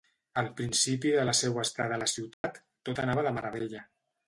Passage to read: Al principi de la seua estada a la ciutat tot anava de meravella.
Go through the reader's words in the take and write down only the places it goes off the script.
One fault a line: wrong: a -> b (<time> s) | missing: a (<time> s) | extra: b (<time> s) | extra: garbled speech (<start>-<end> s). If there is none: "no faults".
no faults